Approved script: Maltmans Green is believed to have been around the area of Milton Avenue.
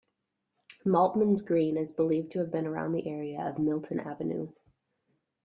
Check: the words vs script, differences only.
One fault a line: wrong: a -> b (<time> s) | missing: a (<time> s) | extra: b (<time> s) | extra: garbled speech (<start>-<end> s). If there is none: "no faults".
no faults